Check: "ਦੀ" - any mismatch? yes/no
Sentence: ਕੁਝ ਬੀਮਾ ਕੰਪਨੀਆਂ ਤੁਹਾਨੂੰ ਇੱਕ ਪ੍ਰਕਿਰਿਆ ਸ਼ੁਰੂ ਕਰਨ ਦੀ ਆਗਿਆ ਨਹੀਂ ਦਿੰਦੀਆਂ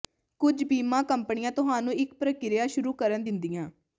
yes